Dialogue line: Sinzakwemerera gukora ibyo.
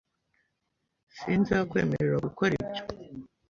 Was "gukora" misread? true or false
false